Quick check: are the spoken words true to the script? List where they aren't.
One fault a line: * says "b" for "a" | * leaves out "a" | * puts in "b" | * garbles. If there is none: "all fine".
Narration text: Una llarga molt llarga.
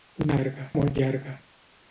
all fine